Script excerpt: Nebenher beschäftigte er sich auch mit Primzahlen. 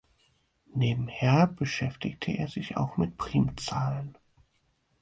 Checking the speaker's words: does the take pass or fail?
pass